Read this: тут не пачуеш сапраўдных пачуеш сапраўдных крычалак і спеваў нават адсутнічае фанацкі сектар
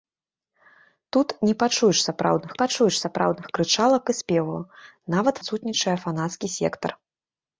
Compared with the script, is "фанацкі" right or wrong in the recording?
right